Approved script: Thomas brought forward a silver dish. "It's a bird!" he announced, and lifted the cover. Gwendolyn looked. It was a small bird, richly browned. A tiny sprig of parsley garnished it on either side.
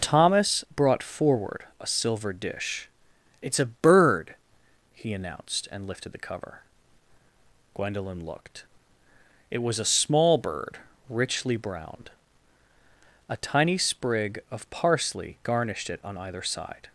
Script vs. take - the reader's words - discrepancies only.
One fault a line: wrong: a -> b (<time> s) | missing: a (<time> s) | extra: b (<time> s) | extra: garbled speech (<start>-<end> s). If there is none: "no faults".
no faults